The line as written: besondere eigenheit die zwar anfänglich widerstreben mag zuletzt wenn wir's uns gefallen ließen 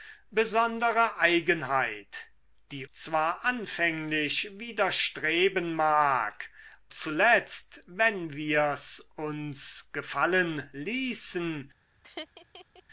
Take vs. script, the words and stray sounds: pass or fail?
fail